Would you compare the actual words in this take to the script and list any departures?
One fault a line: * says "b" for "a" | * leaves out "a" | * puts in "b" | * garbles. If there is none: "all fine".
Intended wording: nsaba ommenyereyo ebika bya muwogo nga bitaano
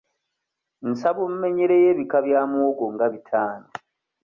all fine